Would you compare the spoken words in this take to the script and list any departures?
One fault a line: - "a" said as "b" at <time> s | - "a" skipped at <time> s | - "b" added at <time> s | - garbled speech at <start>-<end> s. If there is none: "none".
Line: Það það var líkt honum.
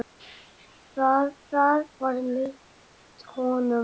none